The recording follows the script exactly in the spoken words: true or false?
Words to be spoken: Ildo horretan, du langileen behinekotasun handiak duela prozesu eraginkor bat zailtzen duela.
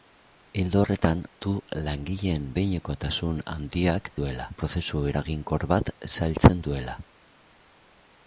true